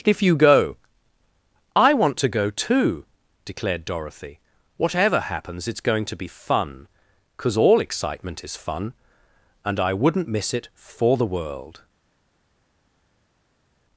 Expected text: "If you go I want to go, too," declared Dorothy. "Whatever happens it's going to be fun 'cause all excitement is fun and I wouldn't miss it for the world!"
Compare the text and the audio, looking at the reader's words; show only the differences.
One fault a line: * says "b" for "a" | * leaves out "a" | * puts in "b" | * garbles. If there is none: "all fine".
all fine